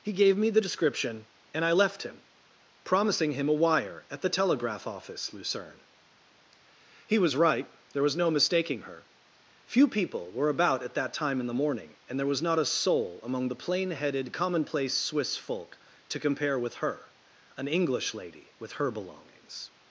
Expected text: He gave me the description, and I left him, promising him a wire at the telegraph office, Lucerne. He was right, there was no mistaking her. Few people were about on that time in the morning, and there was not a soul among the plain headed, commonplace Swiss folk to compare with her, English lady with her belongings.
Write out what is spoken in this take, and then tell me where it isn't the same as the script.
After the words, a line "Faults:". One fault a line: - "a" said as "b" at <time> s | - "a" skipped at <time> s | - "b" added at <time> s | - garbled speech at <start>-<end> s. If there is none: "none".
He gave me the description, and I left him, promising him a wire at the telegraph office, Lucerne. He was right, there was no mistaking her. Few people were about at that time in the morning, and there was not a soul among the plain headed, commonplace Swiss folk to compare with her, an English lady with her belongings.
Faults:
- "on" said as "at" at 10.8 s
- "an" added at 17.6 s